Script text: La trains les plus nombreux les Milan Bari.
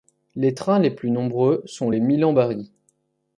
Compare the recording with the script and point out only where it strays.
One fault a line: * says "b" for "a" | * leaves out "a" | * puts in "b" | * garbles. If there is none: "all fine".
* says "Les" for "La"
* puts in "sont"